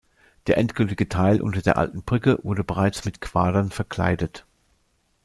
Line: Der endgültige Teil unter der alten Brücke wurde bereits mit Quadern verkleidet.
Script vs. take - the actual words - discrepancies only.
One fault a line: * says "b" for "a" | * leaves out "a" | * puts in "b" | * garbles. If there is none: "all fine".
all fine